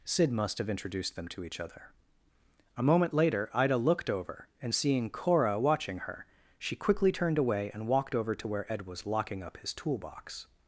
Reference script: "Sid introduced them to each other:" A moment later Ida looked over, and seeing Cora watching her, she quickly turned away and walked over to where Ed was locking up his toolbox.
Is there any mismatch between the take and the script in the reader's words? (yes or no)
yes